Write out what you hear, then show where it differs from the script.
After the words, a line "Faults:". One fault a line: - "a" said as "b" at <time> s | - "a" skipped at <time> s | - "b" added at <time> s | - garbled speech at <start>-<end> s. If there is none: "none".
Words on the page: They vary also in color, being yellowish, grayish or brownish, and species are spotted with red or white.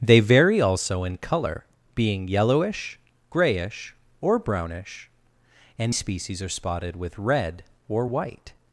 They vary also in color, being yellowish, grayish or brownish, and species are spotted with red or white.
Faults:
none